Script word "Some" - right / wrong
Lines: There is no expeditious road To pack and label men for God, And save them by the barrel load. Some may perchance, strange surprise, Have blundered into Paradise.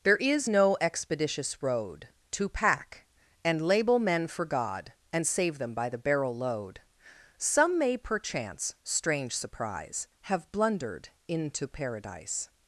right